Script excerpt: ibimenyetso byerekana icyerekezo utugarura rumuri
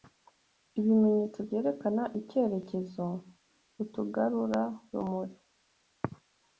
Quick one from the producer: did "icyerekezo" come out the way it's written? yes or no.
yes